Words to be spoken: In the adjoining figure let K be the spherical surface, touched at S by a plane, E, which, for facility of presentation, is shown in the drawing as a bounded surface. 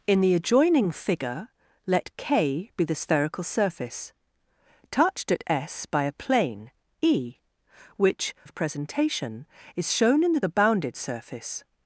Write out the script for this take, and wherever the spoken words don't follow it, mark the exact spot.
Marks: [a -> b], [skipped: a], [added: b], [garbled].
In the adjoining figure let K be the spherical surface, touched at S by a plane, E, which, [skipped: for facility] of presentation, is shown in the [skipped: drawing as] a bounded surface.